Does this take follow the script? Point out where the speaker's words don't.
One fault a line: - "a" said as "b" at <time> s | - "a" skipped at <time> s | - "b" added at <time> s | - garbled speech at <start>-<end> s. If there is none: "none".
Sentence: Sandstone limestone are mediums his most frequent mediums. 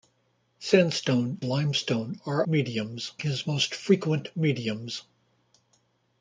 none